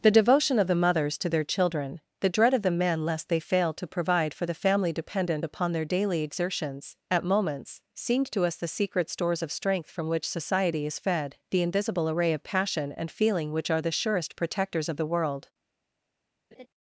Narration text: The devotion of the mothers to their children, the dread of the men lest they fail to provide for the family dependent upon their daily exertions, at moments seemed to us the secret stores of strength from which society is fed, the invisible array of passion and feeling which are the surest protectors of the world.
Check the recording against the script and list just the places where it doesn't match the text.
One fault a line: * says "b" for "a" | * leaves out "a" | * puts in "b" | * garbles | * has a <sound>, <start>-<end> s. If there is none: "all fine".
* has a laugh, 16.5-16.7 s